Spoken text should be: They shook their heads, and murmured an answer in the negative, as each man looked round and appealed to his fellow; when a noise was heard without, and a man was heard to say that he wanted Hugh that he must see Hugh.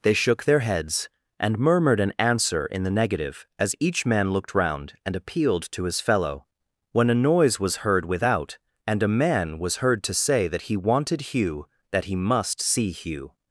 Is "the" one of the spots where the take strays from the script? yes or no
no